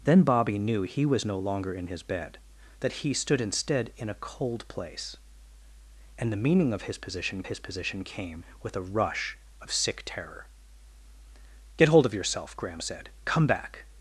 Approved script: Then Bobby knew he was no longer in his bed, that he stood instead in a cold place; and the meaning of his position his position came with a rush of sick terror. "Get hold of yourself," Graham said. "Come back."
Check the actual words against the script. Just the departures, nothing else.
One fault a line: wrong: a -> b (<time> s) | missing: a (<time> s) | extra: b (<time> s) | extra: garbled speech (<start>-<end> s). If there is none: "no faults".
no faults